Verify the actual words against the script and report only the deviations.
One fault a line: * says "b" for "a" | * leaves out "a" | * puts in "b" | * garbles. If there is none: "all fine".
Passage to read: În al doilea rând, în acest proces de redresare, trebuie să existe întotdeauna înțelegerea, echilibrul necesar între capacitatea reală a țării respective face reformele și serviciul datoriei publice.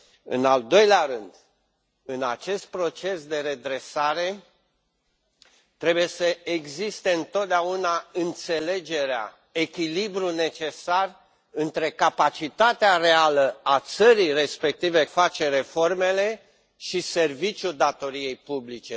all fine